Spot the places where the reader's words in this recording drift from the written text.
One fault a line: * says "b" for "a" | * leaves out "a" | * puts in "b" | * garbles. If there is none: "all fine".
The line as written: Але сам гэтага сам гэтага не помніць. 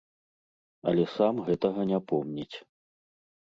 * leaves out "сам гэтага"